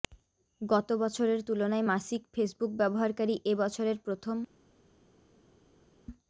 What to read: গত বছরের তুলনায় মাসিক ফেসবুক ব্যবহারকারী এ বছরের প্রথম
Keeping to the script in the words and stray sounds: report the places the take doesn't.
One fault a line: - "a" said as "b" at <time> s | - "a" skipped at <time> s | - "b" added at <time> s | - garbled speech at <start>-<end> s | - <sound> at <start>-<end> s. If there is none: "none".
none